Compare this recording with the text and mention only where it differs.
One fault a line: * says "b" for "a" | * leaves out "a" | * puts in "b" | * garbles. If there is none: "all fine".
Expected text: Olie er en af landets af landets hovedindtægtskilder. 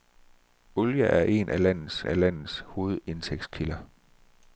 all fine